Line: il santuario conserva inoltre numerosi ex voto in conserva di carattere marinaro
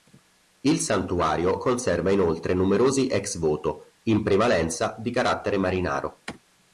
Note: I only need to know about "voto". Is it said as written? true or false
true